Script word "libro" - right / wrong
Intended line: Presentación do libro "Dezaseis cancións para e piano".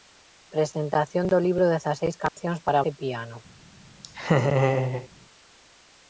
right